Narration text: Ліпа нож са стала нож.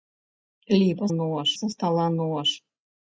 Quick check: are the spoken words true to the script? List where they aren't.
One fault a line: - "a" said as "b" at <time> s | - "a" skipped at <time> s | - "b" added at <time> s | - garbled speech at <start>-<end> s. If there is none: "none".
none